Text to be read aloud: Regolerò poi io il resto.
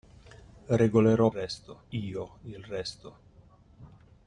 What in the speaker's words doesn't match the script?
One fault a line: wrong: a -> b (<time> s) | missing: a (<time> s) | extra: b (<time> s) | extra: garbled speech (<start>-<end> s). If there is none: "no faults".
wrong: poi -> resto (1.3 s)